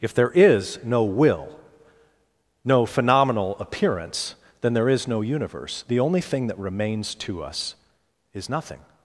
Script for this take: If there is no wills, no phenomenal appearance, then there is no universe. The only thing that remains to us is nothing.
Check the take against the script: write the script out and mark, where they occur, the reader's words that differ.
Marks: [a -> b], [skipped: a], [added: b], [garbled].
If there is no [wills, -> will] no phenomenal appearance, then there is no universe. The only thing that remains to us is nothing.